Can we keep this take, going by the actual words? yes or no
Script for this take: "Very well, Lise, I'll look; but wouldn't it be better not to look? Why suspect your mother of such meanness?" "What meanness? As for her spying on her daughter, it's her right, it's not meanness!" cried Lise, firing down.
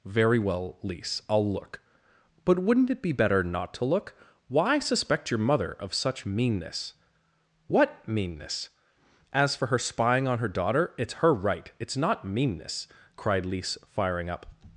no